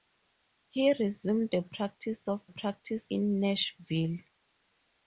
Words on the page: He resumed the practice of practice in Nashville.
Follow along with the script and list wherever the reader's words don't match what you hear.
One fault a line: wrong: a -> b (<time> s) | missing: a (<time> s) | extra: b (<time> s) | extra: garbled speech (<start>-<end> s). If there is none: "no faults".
no faults